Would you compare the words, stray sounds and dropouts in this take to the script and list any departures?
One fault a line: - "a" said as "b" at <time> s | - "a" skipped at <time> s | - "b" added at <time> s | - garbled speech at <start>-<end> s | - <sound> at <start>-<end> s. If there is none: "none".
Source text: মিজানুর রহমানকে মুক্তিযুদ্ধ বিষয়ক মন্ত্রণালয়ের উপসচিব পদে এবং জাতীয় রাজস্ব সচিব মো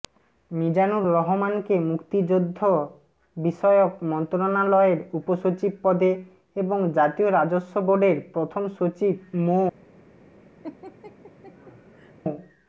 - "বোর্ডের প্রথম" added at 7.9 s
- laugh at 10.6-12.1 s